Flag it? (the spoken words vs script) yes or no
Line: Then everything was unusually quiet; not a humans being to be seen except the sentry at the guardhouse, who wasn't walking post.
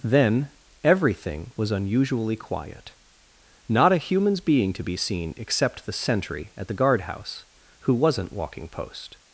no